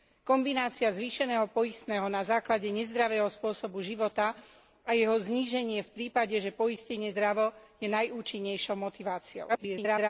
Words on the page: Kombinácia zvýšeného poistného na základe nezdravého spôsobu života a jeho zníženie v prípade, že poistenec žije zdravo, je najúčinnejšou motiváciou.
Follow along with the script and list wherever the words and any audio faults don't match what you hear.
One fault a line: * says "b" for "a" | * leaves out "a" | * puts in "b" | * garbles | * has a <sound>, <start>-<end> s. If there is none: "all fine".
* leaves out "žije"
* garbles